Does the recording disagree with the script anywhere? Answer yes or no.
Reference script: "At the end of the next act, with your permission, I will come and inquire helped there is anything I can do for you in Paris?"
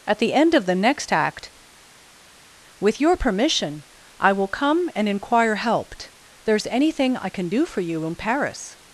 no